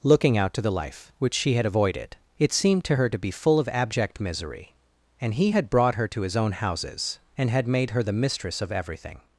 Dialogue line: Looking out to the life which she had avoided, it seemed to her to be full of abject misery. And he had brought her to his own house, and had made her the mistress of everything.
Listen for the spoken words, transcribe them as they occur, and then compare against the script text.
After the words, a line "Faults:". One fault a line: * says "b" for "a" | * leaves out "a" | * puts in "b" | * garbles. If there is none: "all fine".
Looking out to the life which she had avoided, it seemed to her to be full of abject misery. And he had brought her to his own houses, and had made her the mistress of everything.
Faults:
* says "houses" for "house"